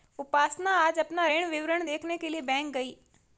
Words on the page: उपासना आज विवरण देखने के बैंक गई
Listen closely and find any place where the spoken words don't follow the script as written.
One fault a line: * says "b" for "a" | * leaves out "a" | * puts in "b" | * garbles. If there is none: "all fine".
* puts in "अपना ऋण"
* puts in "लिए"